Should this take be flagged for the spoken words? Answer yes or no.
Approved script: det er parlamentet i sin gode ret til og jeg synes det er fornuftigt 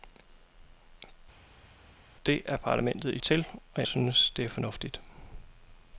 yes